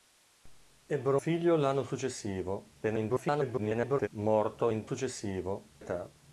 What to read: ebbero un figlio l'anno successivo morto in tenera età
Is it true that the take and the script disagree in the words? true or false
true